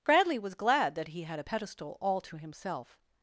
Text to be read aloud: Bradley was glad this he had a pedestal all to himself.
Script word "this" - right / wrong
wrong